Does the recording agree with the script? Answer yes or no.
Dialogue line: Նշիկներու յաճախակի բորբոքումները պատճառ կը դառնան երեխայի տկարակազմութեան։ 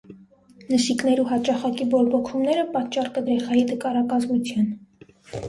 no